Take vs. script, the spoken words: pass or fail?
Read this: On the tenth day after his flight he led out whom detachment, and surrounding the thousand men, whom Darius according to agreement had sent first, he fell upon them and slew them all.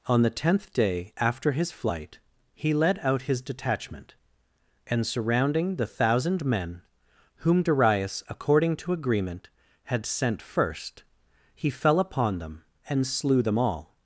fail